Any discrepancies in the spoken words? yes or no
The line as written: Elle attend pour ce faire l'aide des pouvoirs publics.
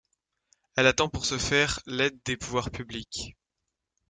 no